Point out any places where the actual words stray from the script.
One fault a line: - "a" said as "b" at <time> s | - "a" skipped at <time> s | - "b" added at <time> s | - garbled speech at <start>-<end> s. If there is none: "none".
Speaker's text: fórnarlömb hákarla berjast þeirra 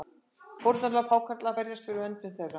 - "fyrir verndun" added at 1.9 s